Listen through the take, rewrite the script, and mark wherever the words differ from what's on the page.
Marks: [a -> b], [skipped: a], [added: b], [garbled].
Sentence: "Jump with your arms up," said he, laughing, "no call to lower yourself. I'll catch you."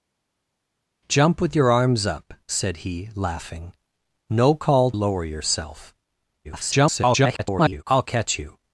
"Jump with your arms up," said he, laughing, "no call [skipped: to] lower yourself. [garbled] I'll catch you."